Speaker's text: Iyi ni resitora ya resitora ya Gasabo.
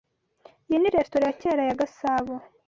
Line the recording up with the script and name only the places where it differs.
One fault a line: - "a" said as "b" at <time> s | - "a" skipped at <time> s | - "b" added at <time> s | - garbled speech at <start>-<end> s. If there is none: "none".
- "resitora" said as "kera" at 1.4 s